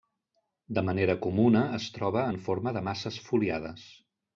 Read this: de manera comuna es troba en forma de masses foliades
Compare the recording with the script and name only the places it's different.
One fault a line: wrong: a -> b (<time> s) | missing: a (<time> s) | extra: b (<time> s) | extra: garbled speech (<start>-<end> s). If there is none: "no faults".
no faults